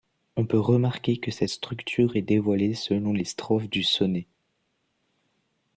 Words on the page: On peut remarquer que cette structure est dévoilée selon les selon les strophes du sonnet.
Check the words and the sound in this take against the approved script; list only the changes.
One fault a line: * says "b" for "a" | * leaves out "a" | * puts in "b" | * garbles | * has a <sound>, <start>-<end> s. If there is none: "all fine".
* leaves out "selon les"